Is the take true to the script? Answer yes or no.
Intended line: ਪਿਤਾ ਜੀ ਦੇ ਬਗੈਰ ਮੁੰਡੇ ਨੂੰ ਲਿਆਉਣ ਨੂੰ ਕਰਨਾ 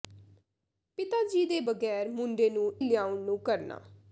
yes